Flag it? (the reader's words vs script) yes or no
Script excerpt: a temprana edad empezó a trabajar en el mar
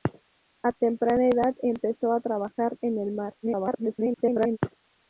yes